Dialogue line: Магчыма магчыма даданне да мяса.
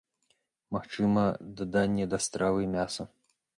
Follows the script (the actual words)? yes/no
no